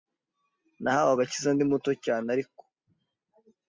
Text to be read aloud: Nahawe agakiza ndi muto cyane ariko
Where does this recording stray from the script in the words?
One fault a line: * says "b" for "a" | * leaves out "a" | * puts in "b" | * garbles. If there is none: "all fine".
all fine